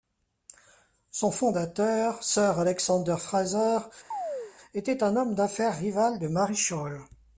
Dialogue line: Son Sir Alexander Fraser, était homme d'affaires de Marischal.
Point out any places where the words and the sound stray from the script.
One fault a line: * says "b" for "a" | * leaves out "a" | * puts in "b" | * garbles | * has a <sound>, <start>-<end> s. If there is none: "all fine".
* puts in "fondateur"
* has a chirp, 4.1-4.5 s
* puts in "un"
* puts in "rival"